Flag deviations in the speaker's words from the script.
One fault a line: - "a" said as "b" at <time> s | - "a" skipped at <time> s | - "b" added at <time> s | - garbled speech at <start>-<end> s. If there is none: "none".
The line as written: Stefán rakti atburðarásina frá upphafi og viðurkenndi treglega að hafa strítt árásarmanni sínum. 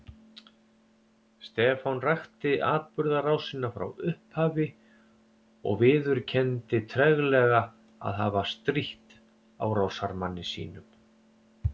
none